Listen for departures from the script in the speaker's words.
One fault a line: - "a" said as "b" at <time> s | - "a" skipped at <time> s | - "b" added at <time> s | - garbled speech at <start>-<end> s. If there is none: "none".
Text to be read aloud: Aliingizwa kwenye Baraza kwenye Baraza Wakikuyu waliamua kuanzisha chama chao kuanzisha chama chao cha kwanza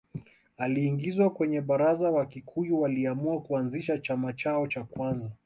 - "kwenye Baraza" skipped at 2.1 s
- "kuanzisha chama chao" skipped at 4.7 s